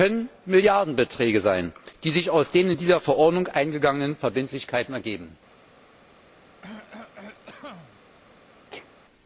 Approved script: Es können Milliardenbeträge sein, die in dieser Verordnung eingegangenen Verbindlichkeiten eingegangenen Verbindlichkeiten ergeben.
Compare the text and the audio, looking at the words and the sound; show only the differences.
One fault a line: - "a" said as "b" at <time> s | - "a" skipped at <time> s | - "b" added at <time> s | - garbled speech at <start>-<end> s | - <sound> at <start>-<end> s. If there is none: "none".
- "sich aus den" added at 2.1 s
- "eingegangenen Verbindlichkeiten" skipped at 4.9 s
- cough at 6.6-8.0 s
- sneeze at 8.7-8.9 s